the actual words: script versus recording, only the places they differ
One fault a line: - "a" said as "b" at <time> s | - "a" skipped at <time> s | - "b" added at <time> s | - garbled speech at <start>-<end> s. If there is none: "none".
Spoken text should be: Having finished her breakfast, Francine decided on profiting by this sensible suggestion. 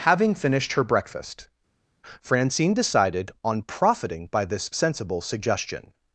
none